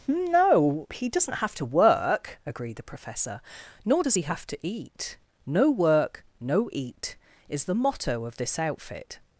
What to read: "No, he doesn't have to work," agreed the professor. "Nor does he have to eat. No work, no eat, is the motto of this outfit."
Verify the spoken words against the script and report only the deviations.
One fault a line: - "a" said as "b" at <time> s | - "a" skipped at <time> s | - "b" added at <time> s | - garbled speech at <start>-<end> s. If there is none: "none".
none